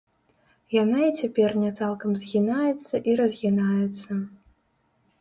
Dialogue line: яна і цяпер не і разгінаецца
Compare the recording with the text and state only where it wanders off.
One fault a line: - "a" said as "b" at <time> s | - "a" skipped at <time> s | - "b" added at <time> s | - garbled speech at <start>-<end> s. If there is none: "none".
- "цалкам згінаецца" added at 1.8 s